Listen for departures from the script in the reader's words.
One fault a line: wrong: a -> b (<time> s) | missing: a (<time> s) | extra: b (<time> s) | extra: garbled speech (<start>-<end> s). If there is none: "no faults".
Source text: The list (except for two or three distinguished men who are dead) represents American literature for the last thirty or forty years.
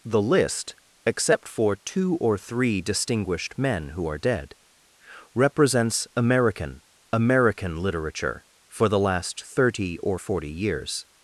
extra: American (7.1 s)